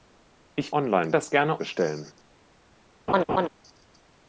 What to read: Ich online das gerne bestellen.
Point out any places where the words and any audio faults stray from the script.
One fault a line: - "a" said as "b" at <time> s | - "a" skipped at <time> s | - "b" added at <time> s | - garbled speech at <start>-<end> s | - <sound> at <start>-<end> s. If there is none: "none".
- laugh at 3.1-3.5 s